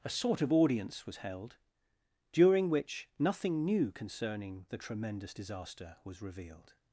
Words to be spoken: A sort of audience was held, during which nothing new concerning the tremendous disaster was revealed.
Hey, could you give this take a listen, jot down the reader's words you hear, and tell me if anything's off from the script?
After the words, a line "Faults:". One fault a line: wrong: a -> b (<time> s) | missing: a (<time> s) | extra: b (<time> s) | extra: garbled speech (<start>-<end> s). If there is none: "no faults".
A sort of audience was held, during which nothing new concerning the tremendous disaster was revealed.
Faults:
no faults